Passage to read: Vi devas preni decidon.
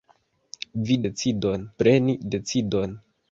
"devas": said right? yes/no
no